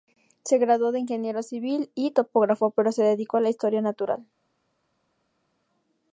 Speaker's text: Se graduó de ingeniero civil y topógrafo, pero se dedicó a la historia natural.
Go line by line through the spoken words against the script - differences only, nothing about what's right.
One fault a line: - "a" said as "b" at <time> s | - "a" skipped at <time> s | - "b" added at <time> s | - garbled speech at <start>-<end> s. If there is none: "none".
none